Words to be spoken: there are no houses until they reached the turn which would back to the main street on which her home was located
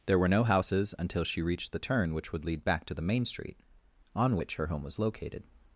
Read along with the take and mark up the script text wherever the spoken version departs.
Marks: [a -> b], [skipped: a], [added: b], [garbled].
there [are -> were] no houses until [they -> she] reached the turn which would [added: lead] back to the main street on which her home was located